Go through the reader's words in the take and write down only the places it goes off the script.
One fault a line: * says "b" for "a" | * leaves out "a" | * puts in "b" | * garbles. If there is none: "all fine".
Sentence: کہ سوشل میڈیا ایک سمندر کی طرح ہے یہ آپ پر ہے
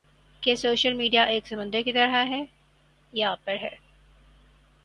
all fine